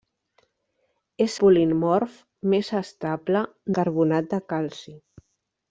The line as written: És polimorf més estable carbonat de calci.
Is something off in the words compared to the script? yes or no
no